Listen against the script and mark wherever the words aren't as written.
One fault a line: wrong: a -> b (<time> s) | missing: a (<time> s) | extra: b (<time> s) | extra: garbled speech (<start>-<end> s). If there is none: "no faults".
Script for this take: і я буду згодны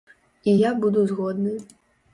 no faults